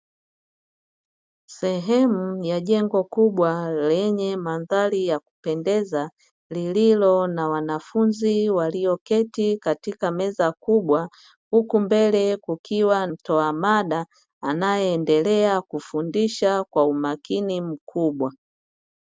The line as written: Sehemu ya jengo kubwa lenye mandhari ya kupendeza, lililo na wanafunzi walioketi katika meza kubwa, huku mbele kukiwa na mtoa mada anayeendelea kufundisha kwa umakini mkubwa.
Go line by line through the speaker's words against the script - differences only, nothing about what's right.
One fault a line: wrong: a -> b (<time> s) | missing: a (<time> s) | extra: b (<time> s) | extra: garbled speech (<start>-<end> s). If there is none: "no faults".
missing: na (13.1 s)